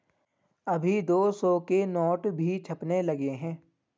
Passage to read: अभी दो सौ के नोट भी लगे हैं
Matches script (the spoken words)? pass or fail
fail